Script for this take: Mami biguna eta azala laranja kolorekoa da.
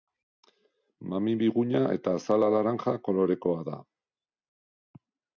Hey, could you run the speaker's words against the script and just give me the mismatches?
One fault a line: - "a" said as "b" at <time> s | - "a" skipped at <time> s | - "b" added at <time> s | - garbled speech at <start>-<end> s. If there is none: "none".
none